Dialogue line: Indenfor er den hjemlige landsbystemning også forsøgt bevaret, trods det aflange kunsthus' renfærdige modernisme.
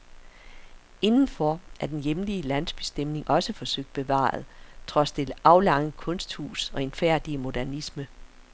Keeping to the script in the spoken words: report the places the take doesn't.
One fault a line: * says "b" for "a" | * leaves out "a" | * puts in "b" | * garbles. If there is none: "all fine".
all fine